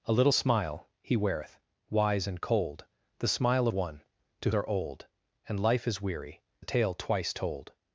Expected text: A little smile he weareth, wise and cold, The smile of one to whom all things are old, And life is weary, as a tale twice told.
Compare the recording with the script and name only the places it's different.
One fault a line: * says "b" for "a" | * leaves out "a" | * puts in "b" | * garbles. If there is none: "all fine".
* leaves out "of"
* leaves out "whom all things"
* leaves out "as"